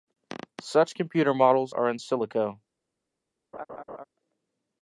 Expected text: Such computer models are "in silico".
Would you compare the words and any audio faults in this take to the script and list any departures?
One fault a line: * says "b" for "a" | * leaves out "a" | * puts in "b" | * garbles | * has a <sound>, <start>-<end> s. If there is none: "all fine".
* has a laugh, 3.5-4.0 s